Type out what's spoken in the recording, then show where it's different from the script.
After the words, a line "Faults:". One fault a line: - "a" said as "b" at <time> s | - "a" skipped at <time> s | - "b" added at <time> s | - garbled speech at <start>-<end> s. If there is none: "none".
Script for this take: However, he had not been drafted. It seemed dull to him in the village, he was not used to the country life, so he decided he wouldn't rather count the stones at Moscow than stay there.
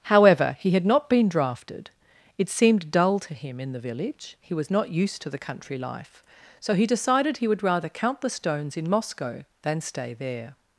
However, he had not been drafted. It seemed dull to him in the village, he was not used to the country life, so he decided he would rather count the stones in Moscow than stay there.
Faults:
- "wouldn't" said as "would" at 7.5 s
- "at" said as "in" at 8.8 s